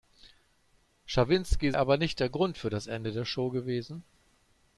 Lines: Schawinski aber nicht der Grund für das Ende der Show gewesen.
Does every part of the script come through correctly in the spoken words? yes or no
yes